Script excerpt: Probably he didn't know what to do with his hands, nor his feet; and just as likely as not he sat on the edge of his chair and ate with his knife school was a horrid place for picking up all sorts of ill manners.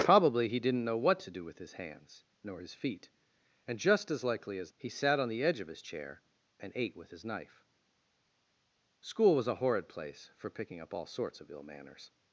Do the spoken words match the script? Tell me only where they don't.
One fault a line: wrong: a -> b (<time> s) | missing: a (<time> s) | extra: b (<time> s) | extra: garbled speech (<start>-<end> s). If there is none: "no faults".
missing: not (4.7 s)